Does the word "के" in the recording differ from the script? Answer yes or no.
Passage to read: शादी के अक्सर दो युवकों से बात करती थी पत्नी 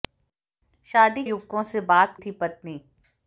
yes